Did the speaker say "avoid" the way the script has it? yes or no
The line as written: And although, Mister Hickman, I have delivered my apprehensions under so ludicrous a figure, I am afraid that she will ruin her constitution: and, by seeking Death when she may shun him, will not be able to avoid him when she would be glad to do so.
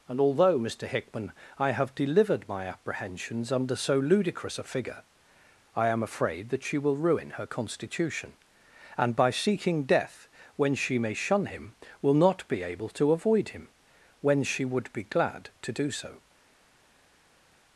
yes